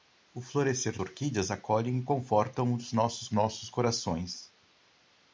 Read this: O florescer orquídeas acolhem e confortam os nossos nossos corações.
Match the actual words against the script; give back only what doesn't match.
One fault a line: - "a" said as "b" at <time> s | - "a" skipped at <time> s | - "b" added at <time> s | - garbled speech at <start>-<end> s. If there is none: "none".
none